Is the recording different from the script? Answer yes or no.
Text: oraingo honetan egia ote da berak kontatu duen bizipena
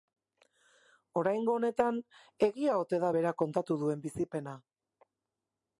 no